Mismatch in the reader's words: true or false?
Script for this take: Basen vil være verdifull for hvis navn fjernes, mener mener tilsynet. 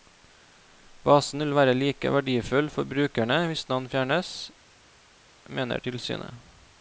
true